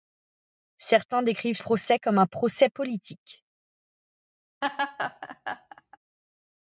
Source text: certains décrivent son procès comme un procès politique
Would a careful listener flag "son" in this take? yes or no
yes